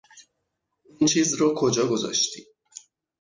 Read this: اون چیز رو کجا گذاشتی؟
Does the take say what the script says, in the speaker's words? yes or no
yes